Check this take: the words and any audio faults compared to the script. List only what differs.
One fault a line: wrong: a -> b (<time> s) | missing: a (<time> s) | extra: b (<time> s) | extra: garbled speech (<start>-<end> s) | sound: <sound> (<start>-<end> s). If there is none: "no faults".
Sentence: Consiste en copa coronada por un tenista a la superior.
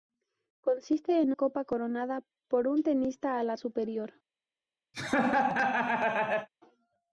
sound: laugh (4.9-6.5 s)